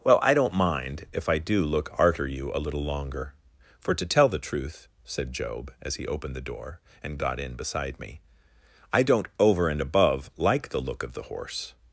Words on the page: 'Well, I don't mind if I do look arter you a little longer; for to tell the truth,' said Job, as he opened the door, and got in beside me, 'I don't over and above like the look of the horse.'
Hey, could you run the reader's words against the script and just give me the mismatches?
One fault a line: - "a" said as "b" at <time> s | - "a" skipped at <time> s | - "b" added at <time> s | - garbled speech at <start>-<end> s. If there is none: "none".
none